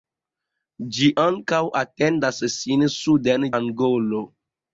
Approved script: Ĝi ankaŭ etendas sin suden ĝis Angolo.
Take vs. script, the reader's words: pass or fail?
fail